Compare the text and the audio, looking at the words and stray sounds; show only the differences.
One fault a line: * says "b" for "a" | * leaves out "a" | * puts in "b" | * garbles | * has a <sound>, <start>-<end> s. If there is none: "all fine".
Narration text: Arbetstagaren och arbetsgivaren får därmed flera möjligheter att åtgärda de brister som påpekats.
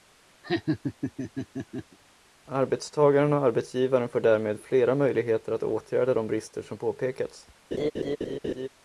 * has a laugh, 0.4-2.0 s
* has a laugh, 7.7-8.7 s